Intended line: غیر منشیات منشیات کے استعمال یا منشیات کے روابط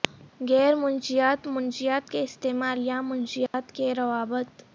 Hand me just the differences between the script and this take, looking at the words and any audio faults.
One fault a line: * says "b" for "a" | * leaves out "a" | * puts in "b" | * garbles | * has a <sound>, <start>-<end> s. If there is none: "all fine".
* has a dropout, 3.5-3.5 s